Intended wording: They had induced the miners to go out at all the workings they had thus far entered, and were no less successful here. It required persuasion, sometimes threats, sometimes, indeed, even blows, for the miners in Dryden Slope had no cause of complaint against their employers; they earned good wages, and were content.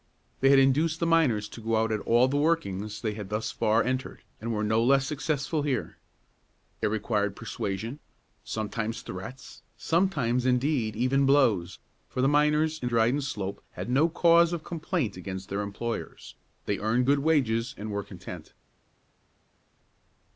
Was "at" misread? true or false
false